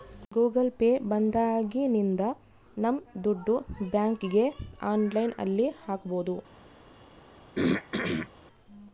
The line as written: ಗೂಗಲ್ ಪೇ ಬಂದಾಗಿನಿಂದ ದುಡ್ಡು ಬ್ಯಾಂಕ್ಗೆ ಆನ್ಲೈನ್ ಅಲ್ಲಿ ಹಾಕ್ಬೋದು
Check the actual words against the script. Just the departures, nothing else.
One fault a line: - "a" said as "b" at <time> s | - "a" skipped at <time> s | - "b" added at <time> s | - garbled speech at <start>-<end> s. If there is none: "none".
- "ನಮ್" added at 2.8 s